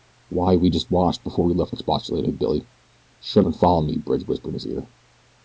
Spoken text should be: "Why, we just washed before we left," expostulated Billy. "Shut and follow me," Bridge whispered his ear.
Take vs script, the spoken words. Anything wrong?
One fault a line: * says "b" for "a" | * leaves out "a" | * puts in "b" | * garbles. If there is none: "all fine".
all fine